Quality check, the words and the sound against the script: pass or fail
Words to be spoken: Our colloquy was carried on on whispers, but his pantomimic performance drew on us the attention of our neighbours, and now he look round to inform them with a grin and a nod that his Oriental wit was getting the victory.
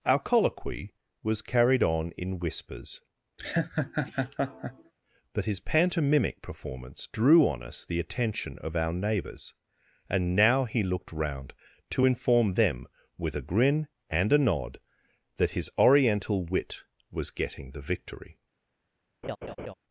fail